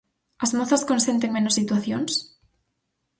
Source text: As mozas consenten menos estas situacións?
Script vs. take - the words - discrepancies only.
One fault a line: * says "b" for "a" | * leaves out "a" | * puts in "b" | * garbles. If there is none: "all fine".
* leaves out "estas"